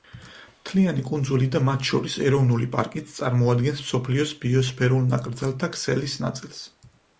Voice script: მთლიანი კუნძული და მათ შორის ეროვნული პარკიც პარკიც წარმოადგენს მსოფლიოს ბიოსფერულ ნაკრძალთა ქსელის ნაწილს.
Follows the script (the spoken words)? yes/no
no